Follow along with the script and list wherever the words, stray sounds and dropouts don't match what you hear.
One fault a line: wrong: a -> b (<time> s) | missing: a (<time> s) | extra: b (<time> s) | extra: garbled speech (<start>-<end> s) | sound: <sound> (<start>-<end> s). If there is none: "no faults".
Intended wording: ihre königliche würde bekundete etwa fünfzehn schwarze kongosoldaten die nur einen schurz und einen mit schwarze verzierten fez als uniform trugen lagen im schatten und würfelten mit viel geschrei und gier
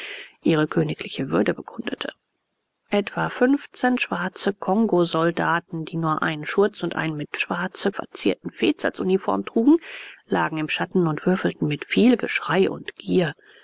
no faults